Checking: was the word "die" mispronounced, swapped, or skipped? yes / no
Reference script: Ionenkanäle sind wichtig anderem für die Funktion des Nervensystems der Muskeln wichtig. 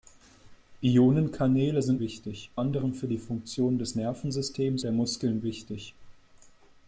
no